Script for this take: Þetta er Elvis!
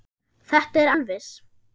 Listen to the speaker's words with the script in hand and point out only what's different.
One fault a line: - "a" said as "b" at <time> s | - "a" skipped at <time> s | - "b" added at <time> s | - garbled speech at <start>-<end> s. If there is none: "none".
none